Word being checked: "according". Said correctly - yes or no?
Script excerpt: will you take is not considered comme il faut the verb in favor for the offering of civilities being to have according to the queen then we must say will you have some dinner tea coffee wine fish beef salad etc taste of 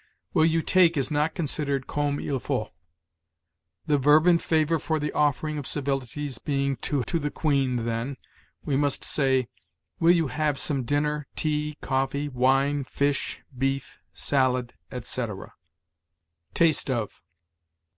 no